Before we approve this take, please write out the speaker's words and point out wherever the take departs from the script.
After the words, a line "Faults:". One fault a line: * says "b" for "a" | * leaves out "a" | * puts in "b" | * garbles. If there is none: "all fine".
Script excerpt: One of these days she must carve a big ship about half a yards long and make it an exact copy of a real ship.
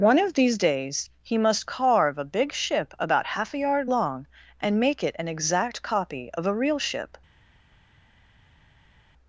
One of these days he must carve a big ship about half a yard long and make it an exact copy of a real ship.
Faults:
* says "he" for "she"
* says "yard" for "yards"